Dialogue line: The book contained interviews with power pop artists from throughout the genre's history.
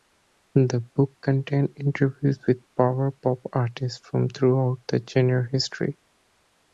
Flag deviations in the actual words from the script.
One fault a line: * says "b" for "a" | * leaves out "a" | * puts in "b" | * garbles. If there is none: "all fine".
all fine